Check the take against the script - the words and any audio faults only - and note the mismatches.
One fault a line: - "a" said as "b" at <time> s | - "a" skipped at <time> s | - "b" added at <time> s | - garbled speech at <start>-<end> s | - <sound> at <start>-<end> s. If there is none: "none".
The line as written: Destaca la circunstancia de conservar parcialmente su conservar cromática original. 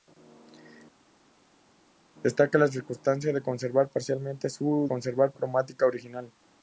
none